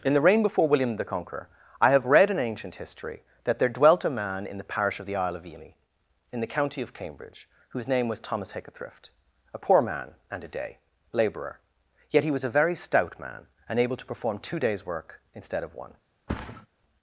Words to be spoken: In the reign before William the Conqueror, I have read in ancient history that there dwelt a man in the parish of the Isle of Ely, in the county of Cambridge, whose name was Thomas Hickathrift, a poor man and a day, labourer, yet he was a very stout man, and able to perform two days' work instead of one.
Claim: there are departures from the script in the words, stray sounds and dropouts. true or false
true